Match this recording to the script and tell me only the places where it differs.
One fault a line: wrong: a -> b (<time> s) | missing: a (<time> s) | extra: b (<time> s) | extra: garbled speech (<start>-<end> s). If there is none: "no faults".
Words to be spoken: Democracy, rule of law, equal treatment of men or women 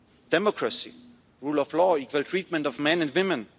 wrong: or -> and (3.0 s)